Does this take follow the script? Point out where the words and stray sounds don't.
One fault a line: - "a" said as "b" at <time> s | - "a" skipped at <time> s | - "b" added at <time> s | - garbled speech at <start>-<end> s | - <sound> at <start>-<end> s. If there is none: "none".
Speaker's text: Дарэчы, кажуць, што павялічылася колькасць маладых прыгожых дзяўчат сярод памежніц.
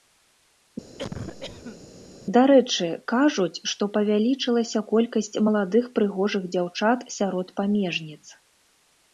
- cough at 1.0-1.8 s